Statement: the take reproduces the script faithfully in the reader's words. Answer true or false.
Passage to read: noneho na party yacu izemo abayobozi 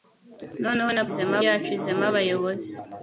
false